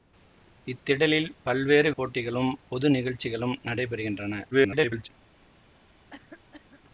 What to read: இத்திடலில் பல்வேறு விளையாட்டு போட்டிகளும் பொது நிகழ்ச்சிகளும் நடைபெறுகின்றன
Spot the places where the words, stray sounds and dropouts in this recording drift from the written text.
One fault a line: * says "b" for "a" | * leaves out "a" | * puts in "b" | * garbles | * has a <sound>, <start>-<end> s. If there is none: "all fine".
* leaves out "விளையாட்டு"
* garbles
* has a cough, 6.1-6.8 s